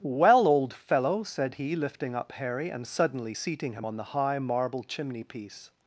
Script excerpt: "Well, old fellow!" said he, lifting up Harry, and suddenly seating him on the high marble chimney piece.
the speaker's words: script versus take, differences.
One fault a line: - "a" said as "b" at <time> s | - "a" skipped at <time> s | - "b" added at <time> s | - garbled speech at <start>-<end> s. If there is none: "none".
none